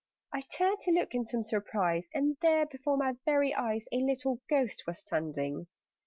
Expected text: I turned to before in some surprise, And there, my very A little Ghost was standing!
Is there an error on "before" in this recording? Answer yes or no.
yes